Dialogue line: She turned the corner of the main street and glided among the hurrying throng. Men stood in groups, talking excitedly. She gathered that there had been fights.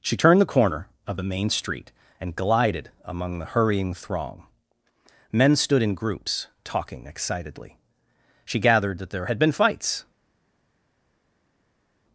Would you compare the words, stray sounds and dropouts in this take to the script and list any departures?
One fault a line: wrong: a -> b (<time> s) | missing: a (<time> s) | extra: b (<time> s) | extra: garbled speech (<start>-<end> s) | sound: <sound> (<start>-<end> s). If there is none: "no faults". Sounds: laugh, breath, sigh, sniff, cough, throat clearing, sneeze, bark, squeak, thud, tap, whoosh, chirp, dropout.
no faults